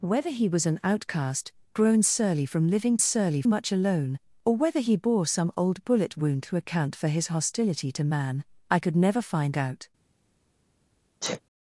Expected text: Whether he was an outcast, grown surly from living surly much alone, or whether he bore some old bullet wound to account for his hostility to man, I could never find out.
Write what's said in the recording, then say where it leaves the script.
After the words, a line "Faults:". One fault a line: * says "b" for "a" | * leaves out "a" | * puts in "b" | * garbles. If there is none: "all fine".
Whether he was an outcast, grown surly from living surly much alone, or whether he bore some old bullet wound to account for his hostility to man, I could never find out.
Faults:
all fine